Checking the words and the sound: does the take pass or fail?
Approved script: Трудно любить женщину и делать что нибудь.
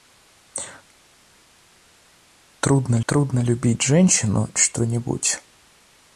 fail